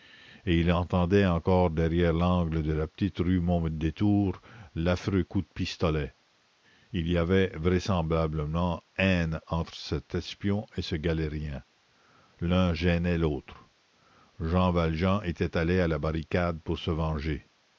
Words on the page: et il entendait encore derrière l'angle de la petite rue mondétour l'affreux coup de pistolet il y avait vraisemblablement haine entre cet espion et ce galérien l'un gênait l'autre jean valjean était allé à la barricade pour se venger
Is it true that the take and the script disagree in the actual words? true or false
false